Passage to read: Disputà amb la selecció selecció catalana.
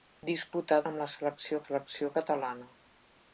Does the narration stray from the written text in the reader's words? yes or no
no